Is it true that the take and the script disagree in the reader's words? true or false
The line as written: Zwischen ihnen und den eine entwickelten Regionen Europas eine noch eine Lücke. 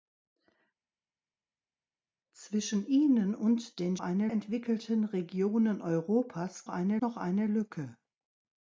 false